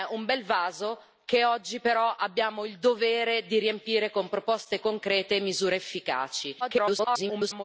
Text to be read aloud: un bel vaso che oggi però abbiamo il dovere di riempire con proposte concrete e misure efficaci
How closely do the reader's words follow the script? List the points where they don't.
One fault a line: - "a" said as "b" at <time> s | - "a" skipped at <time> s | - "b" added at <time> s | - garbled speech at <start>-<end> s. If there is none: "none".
- garbled speech at 6.6-7.6 s